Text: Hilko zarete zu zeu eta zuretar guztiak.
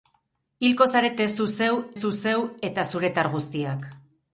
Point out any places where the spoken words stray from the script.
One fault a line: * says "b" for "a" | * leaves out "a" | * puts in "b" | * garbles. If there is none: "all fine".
* puts in "zu zeu"